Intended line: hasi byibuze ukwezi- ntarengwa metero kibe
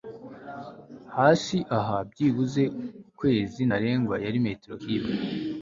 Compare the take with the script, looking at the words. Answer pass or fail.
fail